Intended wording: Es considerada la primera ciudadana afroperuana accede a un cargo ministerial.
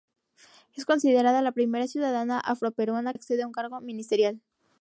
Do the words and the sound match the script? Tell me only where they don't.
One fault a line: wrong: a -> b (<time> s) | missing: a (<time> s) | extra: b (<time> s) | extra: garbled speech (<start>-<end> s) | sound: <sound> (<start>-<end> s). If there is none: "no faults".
no faults